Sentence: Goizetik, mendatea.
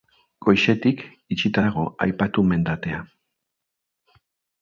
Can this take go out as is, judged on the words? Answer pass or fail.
fail